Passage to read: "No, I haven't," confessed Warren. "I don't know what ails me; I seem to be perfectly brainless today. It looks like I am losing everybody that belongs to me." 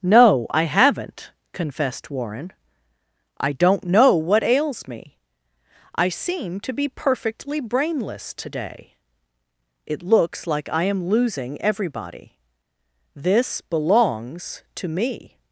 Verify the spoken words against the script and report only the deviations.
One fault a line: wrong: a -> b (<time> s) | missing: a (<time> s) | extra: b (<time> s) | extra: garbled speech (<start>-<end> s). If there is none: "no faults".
wrong: that -> this (13.2 s)